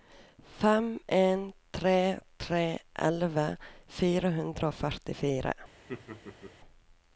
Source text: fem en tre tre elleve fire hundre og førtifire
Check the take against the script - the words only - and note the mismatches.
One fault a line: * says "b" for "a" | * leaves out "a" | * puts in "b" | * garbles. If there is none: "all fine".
all fine